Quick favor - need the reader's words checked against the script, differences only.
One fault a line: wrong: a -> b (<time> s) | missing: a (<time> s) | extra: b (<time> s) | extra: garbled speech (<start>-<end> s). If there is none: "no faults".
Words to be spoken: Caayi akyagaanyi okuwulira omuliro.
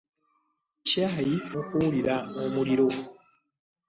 missing: akyagaanyi (1.4 s)